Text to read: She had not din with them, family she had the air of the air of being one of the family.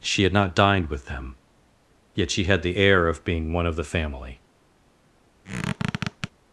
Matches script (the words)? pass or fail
fail